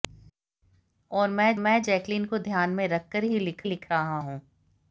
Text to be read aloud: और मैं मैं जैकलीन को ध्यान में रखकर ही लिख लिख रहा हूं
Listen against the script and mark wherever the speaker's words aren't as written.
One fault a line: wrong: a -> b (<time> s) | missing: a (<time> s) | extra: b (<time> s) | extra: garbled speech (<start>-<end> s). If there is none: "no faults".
no faults